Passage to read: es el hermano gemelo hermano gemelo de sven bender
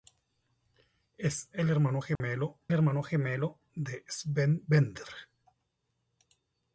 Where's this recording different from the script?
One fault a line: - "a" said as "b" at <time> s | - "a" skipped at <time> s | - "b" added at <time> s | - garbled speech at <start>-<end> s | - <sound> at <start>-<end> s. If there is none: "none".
- dropout at 2.2-2.2 s